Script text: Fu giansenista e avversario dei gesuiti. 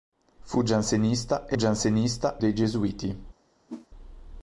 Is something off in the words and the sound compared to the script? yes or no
yes